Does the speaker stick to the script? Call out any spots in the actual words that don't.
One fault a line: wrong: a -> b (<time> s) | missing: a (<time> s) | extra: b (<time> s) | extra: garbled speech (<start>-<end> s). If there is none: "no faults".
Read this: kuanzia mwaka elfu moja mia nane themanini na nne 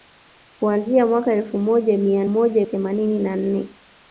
wrong: nane -> moja (2.3 s)